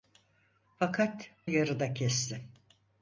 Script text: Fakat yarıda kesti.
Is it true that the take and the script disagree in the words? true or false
false